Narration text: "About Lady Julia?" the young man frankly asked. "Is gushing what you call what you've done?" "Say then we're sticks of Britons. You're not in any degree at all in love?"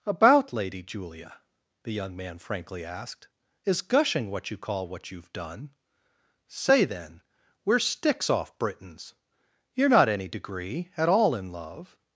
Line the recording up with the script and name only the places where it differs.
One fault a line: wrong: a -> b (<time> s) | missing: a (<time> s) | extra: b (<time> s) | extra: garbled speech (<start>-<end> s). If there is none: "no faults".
wrong: of -> off (8.3 s)
missing: in (10.1 s)